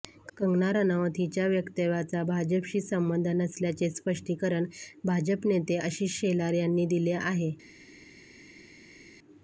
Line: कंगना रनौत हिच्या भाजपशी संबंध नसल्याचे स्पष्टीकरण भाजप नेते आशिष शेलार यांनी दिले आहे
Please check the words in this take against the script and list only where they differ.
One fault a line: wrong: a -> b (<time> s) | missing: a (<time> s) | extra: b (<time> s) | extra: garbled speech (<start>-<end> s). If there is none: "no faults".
extra: वक्तव्याचा (1.5 s)